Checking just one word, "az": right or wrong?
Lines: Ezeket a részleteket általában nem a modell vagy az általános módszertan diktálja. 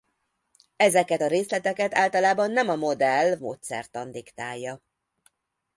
wrong